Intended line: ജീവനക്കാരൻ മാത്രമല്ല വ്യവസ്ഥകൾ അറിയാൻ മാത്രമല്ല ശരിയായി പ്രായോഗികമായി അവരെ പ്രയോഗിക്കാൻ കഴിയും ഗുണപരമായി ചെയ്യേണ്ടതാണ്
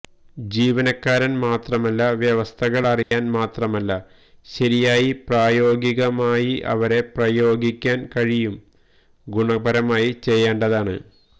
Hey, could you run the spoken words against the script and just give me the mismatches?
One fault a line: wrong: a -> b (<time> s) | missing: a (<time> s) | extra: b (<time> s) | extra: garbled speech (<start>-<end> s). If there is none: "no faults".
no faults